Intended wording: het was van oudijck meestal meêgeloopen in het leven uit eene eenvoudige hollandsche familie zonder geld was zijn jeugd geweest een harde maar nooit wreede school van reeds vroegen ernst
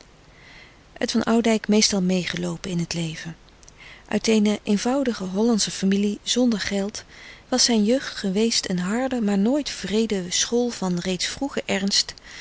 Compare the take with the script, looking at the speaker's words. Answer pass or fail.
fail